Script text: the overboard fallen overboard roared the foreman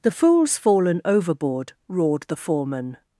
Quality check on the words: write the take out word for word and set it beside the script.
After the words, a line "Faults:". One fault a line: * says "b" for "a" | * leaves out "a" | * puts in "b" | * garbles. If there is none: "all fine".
the fool's fallen overboard roared the foreman
Faults:
* says "fool's" for "overboard"